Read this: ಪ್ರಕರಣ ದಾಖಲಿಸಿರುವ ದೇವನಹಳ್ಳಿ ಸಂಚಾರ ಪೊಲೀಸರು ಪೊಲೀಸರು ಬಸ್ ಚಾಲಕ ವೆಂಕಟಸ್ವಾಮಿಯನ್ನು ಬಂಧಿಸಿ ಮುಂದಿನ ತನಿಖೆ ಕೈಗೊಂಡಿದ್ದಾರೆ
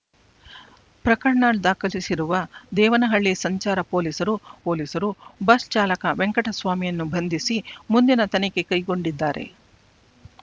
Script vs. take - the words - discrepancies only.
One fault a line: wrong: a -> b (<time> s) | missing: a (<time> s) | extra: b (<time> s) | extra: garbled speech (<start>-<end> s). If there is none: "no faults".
no faults